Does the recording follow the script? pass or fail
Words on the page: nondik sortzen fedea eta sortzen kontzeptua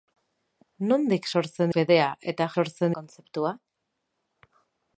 pass